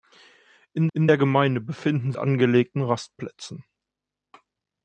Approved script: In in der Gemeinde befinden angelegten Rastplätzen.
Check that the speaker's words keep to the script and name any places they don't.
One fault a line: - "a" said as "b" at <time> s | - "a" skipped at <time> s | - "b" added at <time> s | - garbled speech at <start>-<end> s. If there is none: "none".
none